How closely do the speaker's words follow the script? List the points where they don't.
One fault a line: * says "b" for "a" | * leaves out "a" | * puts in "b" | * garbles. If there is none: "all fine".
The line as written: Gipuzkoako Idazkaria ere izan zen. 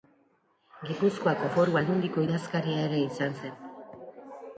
* puts in "Foru Aldundiko"